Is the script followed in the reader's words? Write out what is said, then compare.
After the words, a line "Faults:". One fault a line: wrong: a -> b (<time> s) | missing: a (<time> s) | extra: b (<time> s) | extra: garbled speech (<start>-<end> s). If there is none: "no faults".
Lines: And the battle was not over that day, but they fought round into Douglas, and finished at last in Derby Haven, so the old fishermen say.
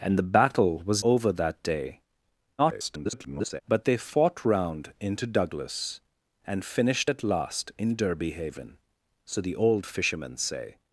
And the battle was over that day, [garbled] but they fought round into Douglas, and finished at last in Derby Haven, so the old fishermen say.
Faults:
missing: not (1.1 s)
extra: garbled speech (2.6-3.6 s)